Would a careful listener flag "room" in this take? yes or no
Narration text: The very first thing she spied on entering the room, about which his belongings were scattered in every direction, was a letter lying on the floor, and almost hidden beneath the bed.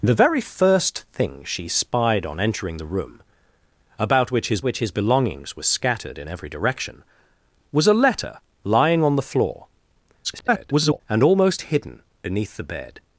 no